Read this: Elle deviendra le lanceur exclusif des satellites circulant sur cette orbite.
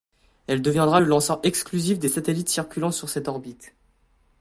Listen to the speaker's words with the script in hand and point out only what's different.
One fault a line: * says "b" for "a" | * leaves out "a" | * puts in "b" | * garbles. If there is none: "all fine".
all fine